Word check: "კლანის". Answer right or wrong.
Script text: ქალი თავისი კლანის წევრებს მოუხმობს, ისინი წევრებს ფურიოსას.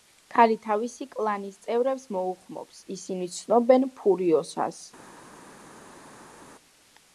right